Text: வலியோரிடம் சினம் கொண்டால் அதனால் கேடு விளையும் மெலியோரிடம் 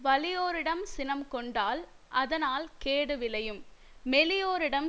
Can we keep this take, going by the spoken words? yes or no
yes